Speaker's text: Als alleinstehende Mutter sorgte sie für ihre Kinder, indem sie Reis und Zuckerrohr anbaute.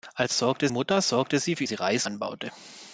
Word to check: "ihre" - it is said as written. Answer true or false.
false